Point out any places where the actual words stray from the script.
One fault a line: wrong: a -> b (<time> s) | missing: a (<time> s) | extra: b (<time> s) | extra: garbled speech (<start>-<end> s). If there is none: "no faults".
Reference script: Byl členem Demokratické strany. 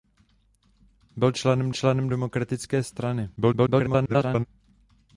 extra: členem (1.7 s)
extra: garbled speech (3.4-4.5 s)